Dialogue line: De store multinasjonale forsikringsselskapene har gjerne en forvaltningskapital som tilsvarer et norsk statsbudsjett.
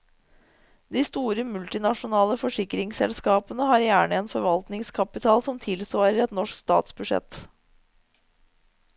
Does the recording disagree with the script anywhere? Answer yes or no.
no